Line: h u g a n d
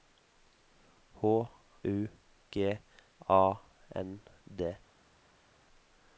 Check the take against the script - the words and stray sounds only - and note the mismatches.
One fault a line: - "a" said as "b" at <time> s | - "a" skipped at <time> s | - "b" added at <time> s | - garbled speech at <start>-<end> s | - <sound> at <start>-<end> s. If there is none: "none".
none